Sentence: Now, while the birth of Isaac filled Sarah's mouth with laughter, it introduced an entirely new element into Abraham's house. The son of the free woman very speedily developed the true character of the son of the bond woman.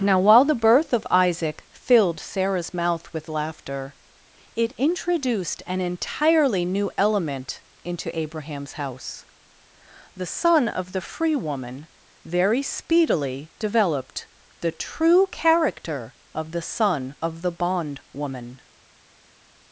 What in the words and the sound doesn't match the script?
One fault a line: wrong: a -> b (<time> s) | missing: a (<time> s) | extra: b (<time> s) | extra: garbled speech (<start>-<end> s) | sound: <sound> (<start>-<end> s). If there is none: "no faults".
no faults